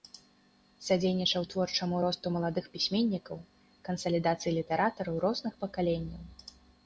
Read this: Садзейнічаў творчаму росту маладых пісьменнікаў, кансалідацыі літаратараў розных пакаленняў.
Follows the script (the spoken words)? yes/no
yes